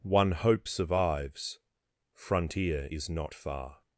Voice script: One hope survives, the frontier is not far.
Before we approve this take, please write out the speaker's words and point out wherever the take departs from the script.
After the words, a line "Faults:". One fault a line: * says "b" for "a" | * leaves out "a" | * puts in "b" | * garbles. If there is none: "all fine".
One hope survives, frontier is not far.
Faults:
* leaves out "the"